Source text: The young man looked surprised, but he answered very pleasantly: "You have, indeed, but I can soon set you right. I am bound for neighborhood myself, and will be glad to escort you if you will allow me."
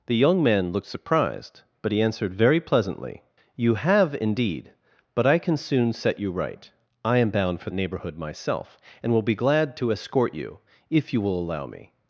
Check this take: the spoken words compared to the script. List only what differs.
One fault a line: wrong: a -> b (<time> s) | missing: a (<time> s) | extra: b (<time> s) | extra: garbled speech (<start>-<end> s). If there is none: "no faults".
no faults